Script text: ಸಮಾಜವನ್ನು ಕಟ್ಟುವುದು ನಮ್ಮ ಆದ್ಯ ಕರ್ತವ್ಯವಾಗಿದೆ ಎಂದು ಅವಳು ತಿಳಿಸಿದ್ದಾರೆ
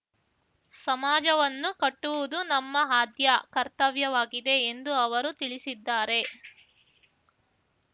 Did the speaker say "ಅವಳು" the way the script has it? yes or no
no